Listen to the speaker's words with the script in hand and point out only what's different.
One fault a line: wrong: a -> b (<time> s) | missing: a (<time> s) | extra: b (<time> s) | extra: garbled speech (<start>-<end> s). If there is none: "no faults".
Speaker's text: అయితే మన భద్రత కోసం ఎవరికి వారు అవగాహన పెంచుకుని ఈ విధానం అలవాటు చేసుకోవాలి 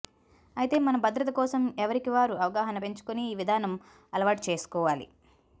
no faults